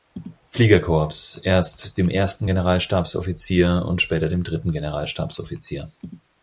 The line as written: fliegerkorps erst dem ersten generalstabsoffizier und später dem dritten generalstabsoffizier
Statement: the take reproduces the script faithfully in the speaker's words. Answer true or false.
true